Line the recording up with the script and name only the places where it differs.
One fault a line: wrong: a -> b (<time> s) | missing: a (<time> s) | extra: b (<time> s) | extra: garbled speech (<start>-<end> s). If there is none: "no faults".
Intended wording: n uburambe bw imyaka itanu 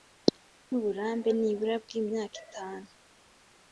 extra: nibura (1.4 s)